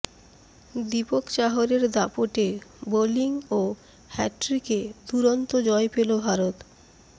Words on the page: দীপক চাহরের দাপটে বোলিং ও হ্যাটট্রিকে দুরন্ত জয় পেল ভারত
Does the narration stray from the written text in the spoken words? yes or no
no